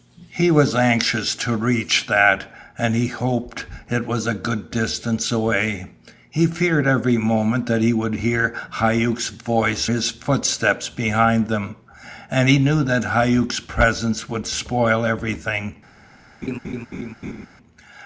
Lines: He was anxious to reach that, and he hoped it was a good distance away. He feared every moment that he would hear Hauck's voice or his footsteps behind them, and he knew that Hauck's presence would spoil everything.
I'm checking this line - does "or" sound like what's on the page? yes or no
no